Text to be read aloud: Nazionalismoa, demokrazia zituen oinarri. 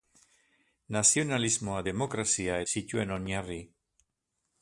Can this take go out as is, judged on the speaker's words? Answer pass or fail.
pass